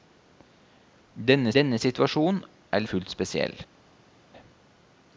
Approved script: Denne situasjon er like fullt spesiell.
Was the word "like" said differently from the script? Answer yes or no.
yes